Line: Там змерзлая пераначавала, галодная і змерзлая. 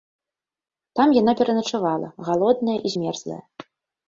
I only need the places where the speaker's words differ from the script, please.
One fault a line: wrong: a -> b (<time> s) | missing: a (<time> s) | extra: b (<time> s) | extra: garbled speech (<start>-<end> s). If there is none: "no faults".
wrong: змерзлая -> яна (1.2 s)